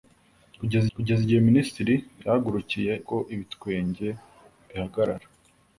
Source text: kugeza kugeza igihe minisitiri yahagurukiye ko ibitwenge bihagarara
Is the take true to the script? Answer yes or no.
yes